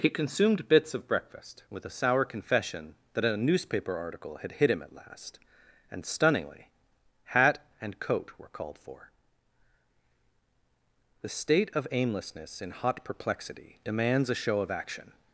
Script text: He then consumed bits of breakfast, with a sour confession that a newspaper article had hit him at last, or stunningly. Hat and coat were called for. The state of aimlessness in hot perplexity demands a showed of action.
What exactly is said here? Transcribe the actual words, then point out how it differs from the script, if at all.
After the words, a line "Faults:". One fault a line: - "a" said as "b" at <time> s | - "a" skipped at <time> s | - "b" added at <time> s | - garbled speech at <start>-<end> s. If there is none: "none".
He consumed bits of breakfast, with a sour confession that a newspaper article had hit him at last, and stunningly. Hat and coat were called for. The state of aimlessness in hot perplexity demands a show of action.
Faults:
- "then" skipped at 0.1 s
- "or" said as "and" at 5.9 s
- "showed" said as "show" at 14.3 s